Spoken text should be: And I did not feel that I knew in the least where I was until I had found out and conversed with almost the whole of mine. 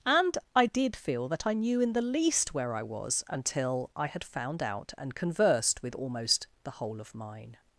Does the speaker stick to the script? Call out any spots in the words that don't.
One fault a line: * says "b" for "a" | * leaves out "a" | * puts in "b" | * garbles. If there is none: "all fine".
* leaves out "not"